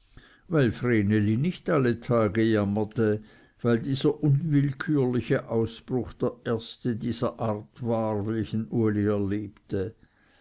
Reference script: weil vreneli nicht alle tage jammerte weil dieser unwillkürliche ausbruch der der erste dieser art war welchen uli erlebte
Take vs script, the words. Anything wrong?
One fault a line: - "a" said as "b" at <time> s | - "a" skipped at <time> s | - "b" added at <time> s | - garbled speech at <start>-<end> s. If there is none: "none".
- "der" skipped at 6.3 s